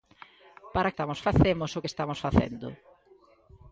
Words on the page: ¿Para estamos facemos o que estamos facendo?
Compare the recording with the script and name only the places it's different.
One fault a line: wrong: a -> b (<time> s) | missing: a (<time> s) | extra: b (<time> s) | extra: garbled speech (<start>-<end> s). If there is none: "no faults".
no faults